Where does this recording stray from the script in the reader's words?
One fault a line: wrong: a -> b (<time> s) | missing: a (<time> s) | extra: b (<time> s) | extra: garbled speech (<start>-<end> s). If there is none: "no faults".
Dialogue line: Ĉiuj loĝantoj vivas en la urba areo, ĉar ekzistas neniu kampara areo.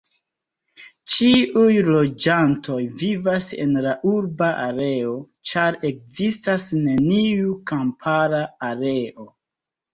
no faults